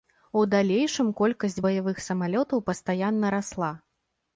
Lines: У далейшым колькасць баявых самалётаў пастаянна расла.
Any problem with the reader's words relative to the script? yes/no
no